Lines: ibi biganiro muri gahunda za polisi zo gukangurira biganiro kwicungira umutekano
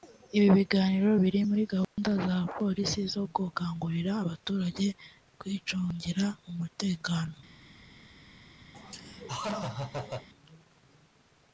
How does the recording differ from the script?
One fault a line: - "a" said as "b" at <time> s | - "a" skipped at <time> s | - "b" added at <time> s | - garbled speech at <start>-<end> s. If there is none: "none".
- "biri" added at 1.2 s
- "biganiro" said as "abaturage" at 4.2 s